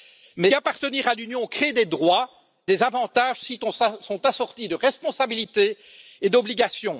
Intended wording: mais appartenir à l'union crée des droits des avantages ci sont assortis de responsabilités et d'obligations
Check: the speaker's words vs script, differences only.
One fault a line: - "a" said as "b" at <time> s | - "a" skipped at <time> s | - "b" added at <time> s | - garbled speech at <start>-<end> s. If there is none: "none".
none